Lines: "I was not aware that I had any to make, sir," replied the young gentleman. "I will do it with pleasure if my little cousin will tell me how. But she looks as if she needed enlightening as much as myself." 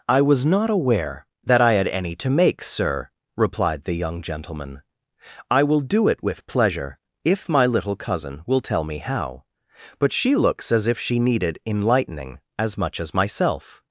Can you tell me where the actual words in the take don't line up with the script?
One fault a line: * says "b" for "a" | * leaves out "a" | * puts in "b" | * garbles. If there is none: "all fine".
all fine